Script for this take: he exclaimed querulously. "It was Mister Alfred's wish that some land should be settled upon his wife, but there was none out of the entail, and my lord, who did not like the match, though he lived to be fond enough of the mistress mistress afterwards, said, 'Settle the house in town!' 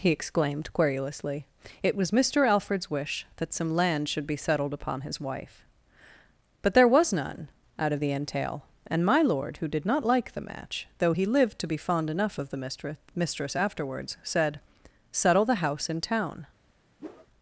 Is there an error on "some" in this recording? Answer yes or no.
no